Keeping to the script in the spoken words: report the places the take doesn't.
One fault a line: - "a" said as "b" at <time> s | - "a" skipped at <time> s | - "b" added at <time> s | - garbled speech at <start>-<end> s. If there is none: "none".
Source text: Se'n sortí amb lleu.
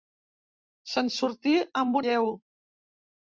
none